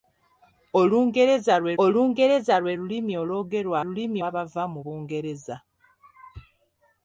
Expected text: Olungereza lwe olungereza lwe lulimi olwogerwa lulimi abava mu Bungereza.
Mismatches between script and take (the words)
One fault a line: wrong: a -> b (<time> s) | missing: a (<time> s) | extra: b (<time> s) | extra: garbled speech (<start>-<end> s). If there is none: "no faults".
no faults